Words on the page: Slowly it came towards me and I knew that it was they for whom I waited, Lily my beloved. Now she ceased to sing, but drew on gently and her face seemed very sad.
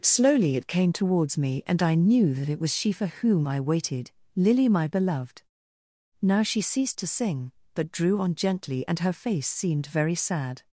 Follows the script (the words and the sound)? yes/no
no